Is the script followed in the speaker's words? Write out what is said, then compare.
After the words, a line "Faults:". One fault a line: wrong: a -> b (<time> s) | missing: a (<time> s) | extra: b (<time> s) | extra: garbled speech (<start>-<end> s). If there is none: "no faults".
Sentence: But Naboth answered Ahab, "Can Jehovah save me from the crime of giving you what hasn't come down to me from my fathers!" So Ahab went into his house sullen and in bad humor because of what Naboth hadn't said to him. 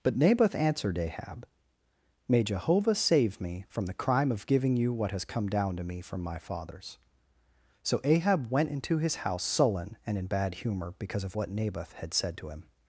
But Naboth answered Ahab, "May Jehovah save me from the crime of giving you what has come down to me from my fathers!" So Ahab went into his house sullen and in bad humor because of what Naboth had said to him.
Faults:
wrong: Can -> May (2.3 s)
wrong: hasn't -> has (5.1 s)
wrong: hadn't -> had (11.9 s)